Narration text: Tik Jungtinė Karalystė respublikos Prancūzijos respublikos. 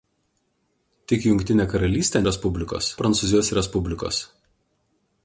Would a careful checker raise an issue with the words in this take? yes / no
no